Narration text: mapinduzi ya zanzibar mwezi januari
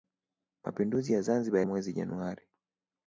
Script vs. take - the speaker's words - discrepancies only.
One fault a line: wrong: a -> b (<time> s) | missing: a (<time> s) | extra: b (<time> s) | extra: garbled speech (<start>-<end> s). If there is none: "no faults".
no faults